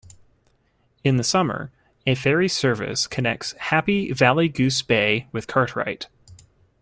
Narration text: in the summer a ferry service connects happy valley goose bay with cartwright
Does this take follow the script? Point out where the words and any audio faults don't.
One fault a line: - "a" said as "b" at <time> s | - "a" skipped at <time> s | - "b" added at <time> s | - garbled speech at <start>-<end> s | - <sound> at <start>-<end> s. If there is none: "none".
none